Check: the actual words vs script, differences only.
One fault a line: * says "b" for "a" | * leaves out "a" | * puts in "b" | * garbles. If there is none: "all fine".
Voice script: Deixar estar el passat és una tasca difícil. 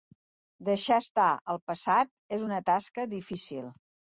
all fine